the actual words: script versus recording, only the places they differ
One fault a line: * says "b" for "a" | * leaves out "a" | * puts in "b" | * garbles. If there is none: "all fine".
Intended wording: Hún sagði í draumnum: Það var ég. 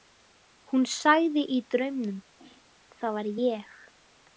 all fine